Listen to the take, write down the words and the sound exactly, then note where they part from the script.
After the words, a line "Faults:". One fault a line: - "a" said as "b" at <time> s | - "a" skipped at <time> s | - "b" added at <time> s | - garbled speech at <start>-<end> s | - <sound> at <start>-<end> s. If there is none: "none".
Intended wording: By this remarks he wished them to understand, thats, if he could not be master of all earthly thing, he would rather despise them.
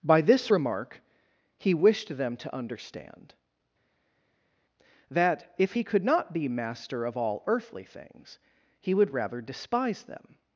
By this remark he wished them to understand, that, if he could not be master of all earthly things, he would rather despise them.
Faults:
- "remarks" said as "remark" at 0.5 s
- "thats" said as "that" at 5.1 s
- "thing" said as "things" at 7.8 s